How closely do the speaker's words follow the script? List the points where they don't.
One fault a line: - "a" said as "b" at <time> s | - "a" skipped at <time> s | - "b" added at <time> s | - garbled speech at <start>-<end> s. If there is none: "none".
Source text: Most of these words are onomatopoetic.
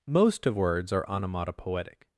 - "these" skipped at 0.6 s